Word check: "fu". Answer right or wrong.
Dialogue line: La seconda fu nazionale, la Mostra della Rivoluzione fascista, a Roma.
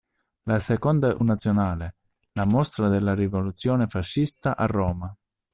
wrong